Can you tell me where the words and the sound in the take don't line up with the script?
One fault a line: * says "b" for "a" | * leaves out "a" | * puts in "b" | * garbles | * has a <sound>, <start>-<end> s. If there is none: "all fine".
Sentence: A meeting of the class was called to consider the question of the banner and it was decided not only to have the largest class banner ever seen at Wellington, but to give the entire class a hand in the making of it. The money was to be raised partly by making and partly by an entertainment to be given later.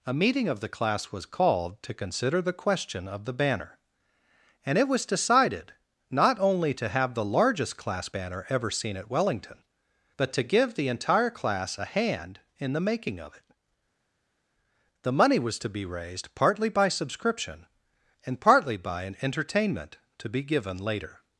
* says "subscription" for "making"